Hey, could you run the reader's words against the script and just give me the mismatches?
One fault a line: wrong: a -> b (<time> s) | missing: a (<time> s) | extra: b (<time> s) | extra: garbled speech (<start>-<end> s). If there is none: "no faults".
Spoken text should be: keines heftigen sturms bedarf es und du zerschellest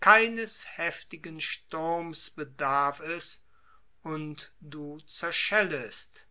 no faults